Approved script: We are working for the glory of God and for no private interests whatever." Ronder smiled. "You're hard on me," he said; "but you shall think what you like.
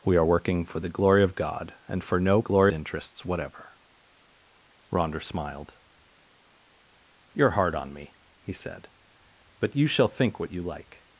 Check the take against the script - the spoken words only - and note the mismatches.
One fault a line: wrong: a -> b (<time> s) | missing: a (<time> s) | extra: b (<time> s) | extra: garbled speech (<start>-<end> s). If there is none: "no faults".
wrong: private -> glory (2.4 s)